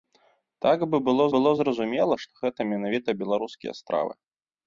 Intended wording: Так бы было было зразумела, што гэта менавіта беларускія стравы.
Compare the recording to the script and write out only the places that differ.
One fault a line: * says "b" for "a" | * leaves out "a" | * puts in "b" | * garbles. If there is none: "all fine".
all fine